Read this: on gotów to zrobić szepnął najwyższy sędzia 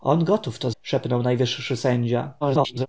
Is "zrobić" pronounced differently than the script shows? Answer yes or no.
yes